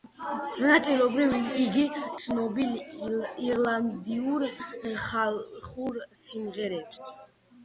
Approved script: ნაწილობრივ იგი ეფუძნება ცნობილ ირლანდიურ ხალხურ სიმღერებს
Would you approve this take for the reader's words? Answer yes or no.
no